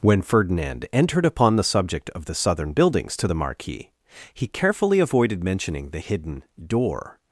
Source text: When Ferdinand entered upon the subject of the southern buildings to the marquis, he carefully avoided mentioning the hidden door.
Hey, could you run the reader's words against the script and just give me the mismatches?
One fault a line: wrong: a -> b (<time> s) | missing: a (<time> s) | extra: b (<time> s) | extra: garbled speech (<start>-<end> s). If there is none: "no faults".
no faults